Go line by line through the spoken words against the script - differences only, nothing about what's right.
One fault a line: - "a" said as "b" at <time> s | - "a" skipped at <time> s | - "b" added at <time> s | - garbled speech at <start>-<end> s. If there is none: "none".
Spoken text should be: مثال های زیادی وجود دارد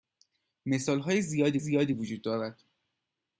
- "زیادی" added at 1.6 s